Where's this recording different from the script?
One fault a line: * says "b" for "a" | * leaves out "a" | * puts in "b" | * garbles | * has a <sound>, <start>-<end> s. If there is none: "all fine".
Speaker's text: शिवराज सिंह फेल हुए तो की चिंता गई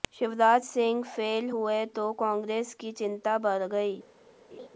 * puts in "कांग्रेस"
* puts in "बढ़"
* has a laugh, 4.5-4.7 s